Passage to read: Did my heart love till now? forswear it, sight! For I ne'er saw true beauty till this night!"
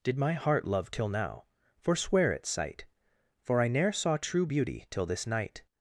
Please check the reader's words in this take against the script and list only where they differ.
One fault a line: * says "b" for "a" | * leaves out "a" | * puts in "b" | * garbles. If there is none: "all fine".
all fine